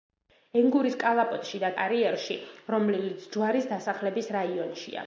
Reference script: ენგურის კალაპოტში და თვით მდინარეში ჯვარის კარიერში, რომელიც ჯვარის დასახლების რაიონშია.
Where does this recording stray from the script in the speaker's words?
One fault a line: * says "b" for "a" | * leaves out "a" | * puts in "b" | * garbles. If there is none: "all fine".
* leaves out "თვით მდინარეში ჯვარის"